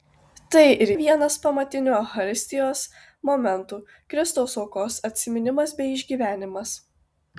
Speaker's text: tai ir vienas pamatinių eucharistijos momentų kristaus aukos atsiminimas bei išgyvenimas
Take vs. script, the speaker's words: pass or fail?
pass